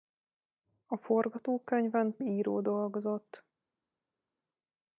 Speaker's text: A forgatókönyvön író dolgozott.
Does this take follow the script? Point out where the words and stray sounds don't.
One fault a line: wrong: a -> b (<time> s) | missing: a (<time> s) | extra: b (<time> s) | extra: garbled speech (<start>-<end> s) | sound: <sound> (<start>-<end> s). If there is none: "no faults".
no faults